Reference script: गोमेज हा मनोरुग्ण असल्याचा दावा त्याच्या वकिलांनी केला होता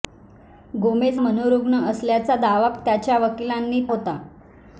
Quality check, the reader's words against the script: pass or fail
fail